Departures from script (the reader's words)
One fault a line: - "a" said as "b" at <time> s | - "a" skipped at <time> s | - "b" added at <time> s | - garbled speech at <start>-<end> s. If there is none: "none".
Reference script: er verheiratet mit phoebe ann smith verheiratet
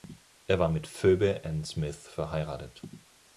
- "verheiratet" said as "war" at 0.6 s